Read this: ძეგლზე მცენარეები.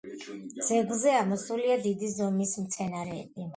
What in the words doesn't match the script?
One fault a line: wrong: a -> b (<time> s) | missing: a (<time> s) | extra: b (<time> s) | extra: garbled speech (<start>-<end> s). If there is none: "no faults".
extra: ამოსულია დიდი ზომის (1.2 s)